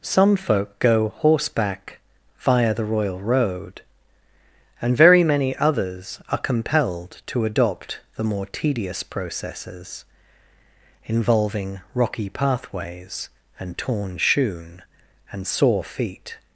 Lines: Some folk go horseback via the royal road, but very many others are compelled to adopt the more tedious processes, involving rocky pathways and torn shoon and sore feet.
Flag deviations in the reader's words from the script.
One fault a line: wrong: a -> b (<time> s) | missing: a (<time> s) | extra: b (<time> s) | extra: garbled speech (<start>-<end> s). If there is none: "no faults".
wrong: but -> and (4.8 s)